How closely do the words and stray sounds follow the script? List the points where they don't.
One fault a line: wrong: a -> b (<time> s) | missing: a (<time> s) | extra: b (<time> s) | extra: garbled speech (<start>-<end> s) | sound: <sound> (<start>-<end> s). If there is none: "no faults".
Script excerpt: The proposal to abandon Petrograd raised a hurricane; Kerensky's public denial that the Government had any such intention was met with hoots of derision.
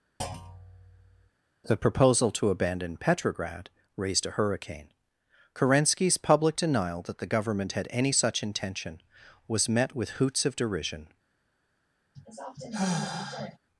sound: thud (0.2-1.3 s)
sound: sigh (12.1-13.6 s)